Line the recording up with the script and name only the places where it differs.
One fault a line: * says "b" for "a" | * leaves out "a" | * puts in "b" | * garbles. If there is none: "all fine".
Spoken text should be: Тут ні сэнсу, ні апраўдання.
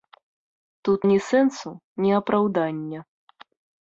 all fine